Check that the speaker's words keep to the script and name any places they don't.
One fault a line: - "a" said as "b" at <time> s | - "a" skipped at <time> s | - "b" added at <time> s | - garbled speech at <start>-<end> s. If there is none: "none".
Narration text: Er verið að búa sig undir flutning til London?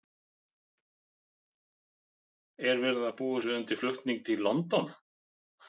none